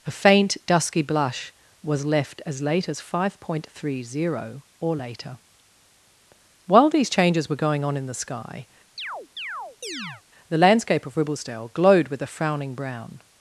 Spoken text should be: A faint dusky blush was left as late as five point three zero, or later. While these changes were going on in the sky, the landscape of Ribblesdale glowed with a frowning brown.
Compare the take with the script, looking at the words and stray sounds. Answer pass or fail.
fail